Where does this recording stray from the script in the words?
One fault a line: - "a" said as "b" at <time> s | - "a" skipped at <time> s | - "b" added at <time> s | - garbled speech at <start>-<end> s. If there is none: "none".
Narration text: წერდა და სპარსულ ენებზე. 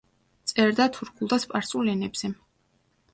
- "თურქულ" added at 0.9 s